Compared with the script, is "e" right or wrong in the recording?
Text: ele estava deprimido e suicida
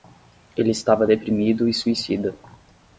right